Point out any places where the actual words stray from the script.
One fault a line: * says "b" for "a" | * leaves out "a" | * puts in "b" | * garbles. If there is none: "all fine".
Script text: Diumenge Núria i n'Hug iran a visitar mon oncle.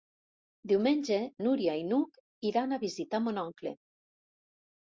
all fine